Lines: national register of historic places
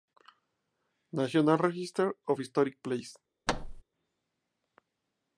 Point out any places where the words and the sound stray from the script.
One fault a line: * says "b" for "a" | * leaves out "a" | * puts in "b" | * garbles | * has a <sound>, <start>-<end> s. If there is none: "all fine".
* has a thud, 3.5-3.8 s